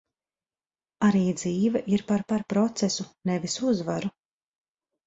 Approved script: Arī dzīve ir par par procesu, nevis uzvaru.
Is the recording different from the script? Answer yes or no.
no